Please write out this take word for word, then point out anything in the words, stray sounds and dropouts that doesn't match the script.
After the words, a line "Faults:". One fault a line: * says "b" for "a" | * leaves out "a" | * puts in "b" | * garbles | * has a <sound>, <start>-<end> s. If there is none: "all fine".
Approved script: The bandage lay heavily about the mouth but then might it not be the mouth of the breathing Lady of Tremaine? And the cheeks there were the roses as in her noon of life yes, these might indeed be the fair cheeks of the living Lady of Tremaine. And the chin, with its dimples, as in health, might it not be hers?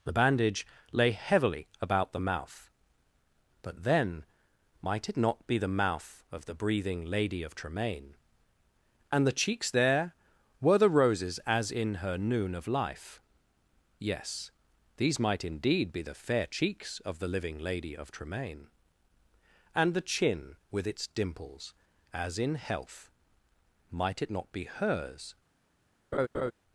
The bandage lay heavily about the mouth but then might it not be the mouth of the breathing Lady of Tremaine? And the cheeks there were the roses as in her noon of life yes, these might indeed be the fair cheeks of the living Lady of Tremaine. And the chin, with its dimples, as in health, might it not be hers?
Faults:
* has a laugh, 26.1-26.5 s